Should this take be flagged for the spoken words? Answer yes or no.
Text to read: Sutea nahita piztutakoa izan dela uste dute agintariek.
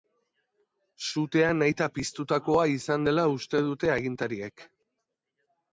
no